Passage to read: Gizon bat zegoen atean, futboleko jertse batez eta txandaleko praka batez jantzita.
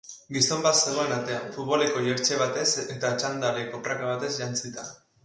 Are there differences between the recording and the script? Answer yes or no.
no